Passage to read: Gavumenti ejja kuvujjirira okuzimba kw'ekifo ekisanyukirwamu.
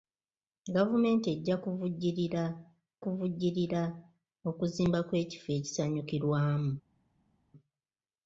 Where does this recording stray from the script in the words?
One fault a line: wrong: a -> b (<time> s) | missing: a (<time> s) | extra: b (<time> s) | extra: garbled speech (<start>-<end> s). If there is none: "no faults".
extra: kuvujjirira (3.0 s)